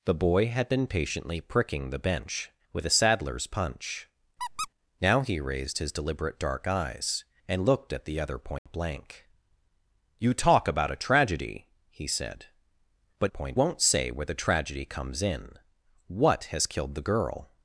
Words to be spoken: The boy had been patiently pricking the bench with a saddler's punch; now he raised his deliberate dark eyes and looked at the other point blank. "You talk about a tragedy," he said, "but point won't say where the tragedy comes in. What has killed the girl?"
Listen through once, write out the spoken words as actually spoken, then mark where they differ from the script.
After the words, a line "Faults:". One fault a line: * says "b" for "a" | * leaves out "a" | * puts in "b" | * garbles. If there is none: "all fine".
The boy had been patiently pricking the bench with a saddler's punch; now he raised his deliberate dark eyes and looked at the other point blank. "You talk about a tragedy," he said, "but point won't say where the tragedy comes in. What has killed the girl?"
Faults:
all fine